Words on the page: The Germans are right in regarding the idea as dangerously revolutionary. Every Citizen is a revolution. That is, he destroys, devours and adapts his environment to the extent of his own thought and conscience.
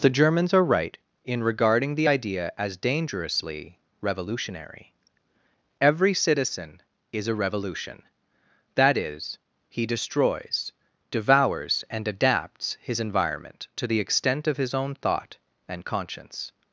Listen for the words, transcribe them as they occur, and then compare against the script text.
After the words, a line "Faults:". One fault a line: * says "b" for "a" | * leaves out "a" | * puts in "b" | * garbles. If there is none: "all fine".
The Germans are right in regarding the idea as dangerously revolutionary. Every Citizen is a revolution. That is, he destroys, devours and adapts his environment to the extent of his own thought and conscience.
Faults:
all fine